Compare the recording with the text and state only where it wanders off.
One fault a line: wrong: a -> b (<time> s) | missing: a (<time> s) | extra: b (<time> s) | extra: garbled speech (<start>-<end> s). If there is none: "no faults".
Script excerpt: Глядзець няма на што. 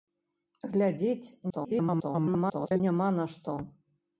extra: garbled speech (1.5-2.8 s)